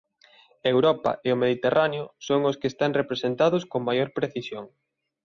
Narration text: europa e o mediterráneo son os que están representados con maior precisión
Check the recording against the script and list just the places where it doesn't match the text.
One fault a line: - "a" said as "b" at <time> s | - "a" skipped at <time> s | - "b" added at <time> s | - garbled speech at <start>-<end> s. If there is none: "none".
none